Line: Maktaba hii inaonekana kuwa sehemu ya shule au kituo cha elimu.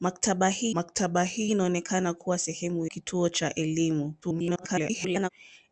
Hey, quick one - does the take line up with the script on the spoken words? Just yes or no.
no